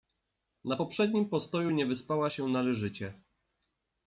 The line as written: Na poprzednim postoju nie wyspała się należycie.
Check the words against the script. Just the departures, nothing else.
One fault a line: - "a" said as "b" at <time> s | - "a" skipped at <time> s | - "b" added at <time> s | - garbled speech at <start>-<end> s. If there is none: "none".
none